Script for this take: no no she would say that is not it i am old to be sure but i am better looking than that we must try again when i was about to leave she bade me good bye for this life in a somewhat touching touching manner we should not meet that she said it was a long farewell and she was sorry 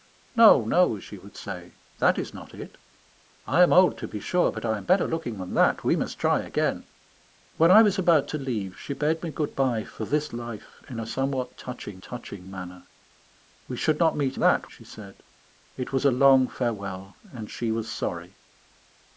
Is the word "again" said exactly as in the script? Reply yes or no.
yes